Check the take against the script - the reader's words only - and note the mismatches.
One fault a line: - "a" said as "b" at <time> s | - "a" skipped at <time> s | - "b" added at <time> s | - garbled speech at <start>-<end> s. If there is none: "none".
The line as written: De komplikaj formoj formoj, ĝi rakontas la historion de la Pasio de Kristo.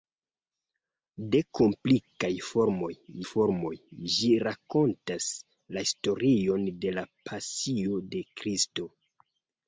none